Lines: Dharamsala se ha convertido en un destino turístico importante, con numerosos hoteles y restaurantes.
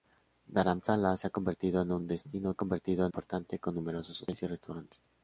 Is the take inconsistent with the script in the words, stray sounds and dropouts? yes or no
yes